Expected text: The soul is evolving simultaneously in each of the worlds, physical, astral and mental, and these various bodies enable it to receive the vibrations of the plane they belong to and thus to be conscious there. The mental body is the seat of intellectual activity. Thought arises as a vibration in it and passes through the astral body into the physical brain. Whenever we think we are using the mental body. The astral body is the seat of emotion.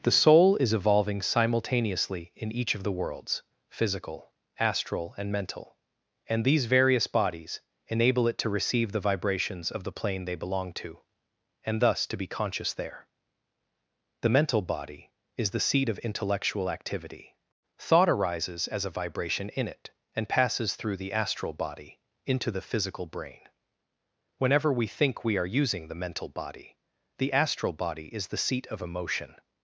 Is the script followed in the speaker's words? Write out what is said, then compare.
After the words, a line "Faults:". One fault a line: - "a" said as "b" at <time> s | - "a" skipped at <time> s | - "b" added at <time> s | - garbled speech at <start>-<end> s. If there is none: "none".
The soul is evolving simultaneously in each of the worlds, physical, astral and mental, and these various bodies enable it to receive the vibrations of the plane they belong to and thus to be conscious there. The mental body is the seat of intellectual activity. Thought arises as a vibration in it and passes through the astral body into the physical brain. Whenever we think we are using the mental body. The astral body is the seat of emotion.
Faults:
none